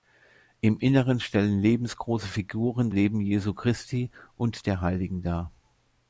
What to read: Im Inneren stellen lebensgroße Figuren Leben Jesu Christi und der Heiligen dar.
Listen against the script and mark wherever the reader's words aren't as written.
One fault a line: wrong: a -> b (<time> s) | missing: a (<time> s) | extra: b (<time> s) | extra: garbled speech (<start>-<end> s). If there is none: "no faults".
no faults